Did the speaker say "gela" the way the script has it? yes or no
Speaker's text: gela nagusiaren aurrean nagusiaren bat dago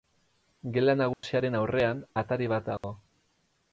yes